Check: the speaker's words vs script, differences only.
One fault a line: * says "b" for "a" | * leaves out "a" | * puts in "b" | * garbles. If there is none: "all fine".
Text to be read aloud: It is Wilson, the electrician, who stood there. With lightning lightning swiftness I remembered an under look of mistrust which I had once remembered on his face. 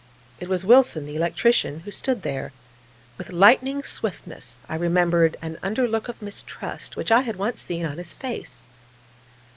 * says "was" for "is"
* leaves out "lightning"
* says "seen" for "remembered"